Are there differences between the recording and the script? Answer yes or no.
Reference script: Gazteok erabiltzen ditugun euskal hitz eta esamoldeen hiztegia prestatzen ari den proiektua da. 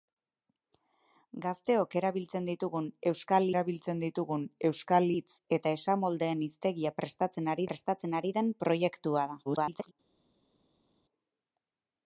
yes